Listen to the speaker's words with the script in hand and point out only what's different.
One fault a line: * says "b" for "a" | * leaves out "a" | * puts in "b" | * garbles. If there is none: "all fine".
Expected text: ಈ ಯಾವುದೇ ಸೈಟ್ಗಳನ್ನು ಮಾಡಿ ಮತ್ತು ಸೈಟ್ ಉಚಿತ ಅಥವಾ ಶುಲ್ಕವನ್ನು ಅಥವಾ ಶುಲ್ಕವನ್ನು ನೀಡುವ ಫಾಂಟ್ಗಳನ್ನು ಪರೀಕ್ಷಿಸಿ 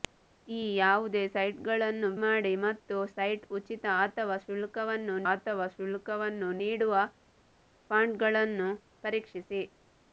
all fine